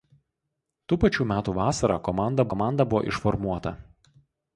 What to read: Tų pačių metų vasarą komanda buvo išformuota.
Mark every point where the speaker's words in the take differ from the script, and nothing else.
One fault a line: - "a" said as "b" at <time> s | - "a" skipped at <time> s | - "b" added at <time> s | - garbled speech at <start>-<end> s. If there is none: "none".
- "komanda" added at 2.5 s